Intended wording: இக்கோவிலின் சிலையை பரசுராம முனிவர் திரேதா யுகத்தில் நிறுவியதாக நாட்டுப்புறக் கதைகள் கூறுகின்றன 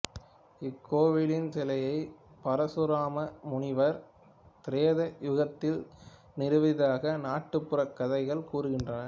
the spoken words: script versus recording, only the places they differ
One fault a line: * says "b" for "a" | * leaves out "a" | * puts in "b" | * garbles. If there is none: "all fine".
all fine